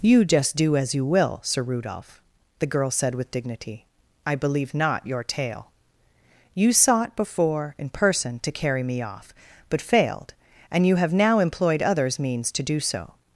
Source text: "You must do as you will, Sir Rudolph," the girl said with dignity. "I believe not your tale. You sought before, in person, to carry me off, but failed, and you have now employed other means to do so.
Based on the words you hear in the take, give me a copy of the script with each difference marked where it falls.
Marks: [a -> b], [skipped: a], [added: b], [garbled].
"You [must -> just] do as you will, Sir Rudolph," the girl said with dignity. "I believe not your tale. You sought before, in person, to carry me off, but failed, and you have now employed [other -> others] means to do so.